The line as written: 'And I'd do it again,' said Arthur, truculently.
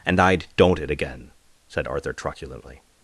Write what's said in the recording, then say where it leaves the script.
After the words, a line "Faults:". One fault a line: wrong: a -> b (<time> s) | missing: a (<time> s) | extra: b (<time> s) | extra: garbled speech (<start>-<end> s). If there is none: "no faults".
'And I'd don't it again,' said Arthur, truculently.
Faults:
wrong: do -> don't (0.6 s)